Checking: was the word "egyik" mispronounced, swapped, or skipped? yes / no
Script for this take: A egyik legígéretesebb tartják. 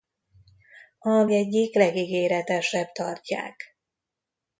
no